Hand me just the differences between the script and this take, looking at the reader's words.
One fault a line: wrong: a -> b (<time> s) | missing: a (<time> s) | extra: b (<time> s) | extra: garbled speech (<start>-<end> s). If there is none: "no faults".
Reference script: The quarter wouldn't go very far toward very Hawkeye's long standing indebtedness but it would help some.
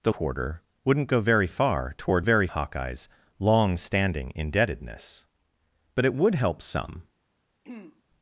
no faults